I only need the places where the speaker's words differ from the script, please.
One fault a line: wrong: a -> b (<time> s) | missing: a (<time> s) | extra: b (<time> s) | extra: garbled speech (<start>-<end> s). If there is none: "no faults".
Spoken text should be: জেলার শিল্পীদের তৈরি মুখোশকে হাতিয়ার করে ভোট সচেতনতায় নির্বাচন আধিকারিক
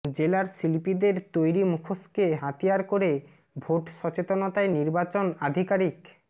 no faults